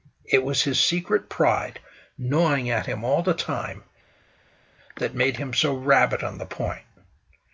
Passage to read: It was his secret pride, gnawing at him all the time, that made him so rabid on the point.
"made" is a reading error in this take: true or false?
false